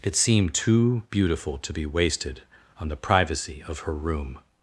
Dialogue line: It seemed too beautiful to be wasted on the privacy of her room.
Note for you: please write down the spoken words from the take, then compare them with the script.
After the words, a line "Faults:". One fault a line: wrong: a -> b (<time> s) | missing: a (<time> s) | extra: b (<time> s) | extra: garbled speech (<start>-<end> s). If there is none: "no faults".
It seemed too beautiful to be wasted on the privacy of her room.
Faults:
no faults